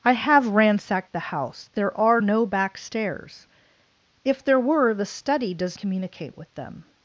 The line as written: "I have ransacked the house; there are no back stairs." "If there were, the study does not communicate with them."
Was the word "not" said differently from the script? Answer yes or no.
yes